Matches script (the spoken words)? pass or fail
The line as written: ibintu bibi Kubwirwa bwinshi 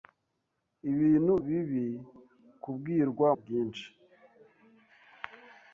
pass